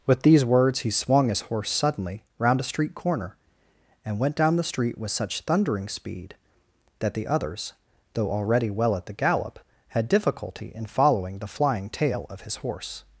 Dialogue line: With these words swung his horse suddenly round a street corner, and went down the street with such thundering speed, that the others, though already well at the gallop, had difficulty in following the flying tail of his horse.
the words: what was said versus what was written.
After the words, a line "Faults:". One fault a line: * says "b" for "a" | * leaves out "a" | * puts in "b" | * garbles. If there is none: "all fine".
With these words he swung his horse suddenly round a street corner, and went down the street with such thundering speed, that the others, though already well at the gallop, had difficulty in following the flying tail of his horse.
Faults:
* puts in "he"